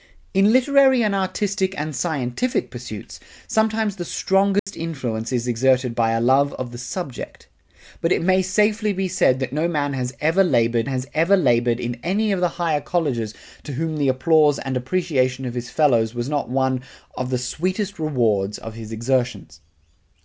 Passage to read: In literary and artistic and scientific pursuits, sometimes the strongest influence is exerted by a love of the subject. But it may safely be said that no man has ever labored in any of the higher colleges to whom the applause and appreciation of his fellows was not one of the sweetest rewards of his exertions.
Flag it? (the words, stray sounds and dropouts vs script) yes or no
yes